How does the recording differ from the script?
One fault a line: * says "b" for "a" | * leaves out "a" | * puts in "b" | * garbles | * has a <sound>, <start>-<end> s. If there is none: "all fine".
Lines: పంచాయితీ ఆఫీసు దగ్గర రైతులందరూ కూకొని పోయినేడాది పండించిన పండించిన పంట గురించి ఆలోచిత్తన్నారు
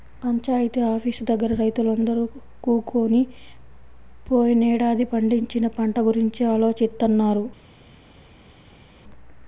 * leaves out "పండించిన"